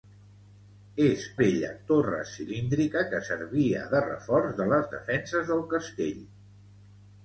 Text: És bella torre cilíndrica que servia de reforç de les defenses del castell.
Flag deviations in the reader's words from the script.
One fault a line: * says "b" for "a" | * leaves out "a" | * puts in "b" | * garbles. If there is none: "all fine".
all fine